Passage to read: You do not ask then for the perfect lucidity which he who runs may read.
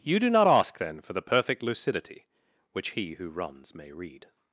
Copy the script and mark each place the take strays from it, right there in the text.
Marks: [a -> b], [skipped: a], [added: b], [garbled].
You do not ask then for the perfect lucidity which he who runs may read.